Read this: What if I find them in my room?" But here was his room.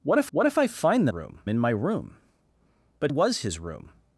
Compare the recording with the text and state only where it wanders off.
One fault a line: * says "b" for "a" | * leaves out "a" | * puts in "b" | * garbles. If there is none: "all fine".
* puts in "what if"
* says "room" for "them"
* leaves out "here"